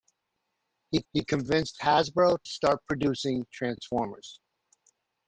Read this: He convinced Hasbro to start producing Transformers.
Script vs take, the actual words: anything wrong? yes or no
yes